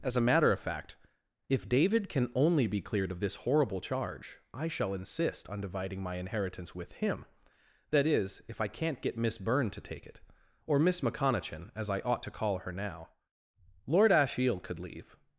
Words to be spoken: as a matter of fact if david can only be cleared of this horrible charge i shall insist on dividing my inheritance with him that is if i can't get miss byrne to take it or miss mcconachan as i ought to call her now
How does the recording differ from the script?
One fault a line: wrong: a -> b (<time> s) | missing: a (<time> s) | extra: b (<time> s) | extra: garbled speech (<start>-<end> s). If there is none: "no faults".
extra: lord ashiel could leave (13.9 s)